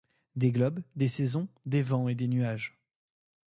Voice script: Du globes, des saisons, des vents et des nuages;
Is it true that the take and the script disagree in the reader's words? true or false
true